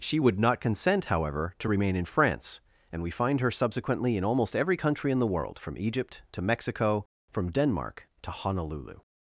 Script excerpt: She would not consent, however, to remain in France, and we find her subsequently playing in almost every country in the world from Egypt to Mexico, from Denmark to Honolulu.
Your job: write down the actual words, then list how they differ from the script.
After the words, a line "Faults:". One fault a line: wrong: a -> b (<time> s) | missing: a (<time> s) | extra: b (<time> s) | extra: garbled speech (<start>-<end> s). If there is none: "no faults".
She would not consent, however, to remain in France, and we find her subsequently in almost every country in the world from Egypt to Mexico, from Denmark to Honolulu.
Faults:
missing: playing (4.2 s)